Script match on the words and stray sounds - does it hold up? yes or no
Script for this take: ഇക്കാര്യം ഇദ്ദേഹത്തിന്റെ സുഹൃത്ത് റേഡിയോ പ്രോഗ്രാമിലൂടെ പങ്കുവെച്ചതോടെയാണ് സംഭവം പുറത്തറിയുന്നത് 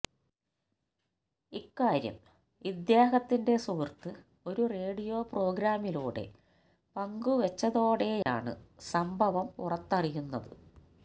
no